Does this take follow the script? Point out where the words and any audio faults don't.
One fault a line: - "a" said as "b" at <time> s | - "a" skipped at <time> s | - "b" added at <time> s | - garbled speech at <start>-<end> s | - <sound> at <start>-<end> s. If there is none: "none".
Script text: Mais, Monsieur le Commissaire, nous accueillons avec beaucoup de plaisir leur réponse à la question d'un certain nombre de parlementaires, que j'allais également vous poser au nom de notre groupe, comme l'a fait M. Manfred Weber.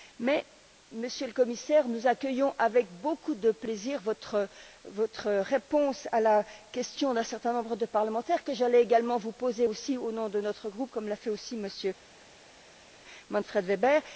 - "leur" said as "votre" at 4.0 s
- "aussi" added at 11.3 s